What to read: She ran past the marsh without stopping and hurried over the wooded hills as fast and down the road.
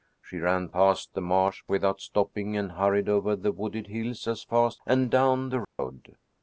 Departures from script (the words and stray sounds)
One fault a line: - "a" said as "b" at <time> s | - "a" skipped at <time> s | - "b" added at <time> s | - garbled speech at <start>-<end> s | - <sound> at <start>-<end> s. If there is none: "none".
- dropout at 5.6-5.8 s